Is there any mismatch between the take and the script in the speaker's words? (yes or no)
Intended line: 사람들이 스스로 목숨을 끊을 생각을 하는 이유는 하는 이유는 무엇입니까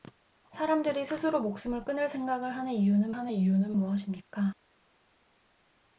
no